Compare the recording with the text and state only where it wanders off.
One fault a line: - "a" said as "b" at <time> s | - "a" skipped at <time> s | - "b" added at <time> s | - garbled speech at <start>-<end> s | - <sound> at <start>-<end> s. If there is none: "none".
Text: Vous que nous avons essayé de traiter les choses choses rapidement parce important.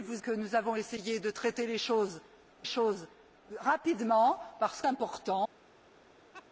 - laugh at 6.3-6.5 s